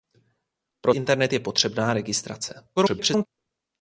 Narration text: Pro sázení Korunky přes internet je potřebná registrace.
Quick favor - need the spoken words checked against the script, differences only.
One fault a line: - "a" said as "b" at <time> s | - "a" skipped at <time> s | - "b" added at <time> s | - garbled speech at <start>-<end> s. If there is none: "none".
- "sázení Korunky přes" skipped at 0.9 s
- garbled speech at 2.8-3.3 s